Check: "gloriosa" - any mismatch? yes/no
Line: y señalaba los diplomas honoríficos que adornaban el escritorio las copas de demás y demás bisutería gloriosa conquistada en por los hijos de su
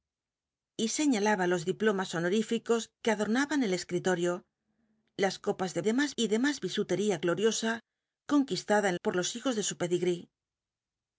no